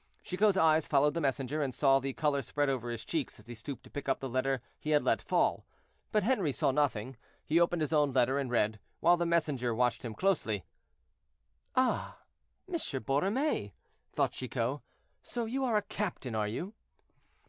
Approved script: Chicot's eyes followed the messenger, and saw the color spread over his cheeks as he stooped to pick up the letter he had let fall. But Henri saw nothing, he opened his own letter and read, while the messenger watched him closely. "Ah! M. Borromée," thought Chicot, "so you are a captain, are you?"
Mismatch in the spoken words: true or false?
false